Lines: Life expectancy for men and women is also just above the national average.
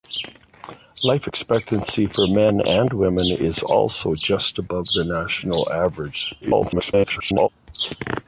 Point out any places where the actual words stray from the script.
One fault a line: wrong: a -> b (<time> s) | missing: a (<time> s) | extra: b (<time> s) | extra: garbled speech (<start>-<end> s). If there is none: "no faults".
extra: garbled speech (6.4-7.5 s)